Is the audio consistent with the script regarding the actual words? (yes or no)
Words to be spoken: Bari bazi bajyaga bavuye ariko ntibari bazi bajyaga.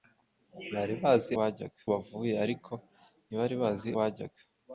yes